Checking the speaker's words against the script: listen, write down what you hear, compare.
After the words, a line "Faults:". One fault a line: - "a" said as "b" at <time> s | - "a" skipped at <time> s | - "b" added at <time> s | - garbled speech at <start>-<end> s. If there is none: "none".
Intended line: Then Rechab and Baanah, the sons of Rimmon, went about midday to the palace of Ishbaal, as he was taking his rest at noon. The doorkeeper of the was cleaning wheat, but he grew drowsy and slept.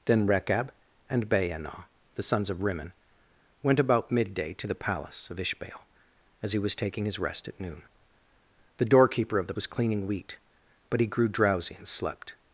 Then Rechab and Baanah, the sons of Rimmon, went about midday to the palace of Ishbaal, as he was taking his rest at noon. The doorkeeper of the was cleaning wheat, but he grew drowsy and slept.
Faults:
none